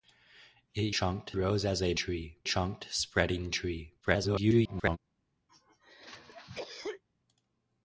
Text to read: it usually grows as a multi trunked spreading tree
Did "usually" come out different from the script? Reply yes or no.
yes